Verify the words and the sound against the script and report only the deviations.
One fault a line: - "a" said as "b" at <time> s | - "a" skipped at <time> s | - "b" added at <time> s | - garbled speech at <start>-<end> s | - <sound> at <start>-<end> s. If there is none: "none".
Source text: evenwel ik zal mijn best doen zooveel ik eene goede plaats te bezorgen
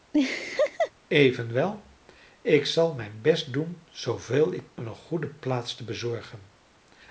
- laugh at 0.1-0.9 s